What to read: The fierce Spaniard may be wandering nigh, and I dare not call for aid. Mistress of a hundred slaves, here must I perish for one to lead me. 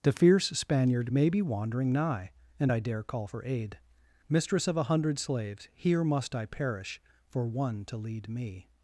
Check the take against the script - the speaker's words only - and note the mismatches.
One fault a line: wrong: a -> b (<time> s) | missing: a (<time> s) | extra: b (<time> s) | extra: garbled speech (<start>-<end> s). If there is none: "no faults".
missing: not (3.0 s)